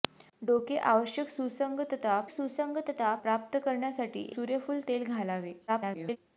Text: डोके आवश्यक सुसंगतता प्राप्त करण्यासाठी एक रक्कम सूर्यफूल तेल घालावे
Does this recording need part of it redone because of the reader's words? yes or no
yes